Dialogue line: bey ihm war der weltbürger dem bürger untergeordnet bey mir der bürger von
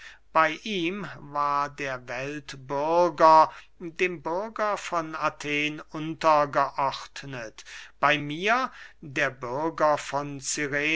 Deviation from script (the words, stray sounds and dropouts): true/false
true